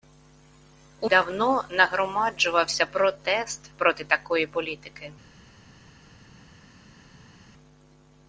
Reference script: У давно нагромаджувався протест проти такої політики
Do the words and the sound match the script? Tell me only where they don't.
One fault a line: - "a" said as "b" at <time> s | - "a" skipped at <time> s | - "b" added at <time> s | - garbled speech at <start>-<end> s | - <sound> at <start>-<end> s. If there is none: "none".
none